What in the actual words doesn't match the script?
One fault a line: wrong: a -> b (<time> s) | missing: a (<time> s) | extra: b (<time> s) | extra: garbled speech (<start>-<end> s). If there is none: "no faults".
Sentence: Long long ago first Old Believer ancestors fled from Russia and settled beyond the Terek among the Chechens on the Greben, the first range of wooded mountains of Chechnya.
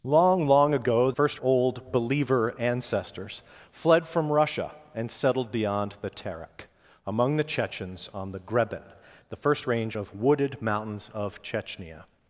no faults